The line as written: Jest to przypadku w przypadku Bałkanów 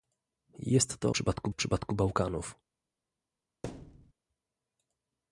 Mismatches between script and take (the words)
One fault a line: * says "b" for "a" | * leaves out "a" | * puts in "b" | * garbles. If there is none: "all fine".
all fine